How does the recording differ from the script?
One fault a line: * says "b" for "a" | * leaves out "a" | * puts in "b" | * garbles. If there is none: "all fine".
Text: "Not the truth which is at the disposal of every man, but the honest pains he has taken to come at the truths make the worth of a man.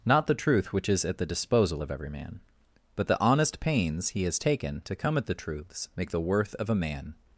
all fine